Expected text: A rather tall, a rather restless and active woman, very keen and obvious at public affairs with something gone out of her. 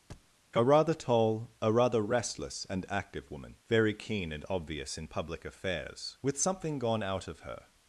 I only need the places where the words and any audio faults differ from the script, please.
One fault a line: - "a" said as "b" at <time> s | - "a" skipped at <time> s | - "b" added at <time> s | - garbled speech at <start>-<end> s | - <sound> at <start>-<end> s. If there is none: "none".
- thud at 0.1-0.3 s
- "at" said as "in" at 5.0 s